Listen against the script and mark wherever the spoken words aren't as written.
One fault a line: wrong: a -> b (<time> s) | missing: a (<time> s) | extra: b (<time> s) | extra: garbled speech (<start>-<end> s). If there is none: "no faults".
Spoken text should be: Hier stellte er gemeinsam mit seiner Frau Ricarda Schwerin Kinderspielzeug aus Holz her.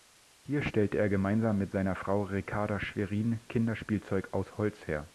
no faults